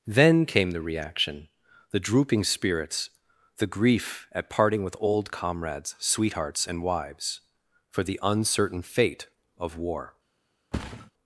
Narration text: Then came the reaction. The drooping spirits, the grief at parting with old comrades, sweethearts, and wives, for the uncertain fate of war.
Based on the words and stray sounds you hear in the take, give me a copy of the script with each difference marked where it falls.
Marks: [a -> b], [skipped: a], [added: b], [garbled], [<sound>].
Then came the reaction. The drooping spirits, the grief at parting with old comrades, sweethearts, and wives, for the uncertain fate of war. [thud]